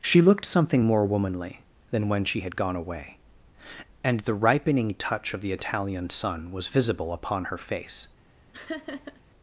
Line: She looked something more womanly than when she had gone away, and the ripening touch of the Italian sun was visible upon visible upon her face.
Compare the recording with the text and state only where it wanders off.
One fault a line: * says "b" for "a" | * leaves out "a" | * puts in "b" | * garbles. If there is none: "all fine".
* leaves out "visible upon"